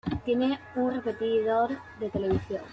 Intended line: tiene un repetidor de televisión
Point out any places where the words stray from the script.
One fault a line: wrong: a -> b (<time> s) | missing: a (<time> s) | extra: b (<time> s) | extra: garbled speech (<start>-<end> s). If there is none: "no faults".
no faults